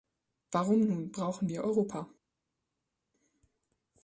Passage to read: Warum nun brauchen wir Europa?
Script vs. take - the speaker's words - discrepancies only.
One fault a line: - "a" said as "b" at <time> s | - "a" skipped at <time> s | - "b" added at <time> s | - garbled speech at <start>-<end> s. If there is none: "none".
none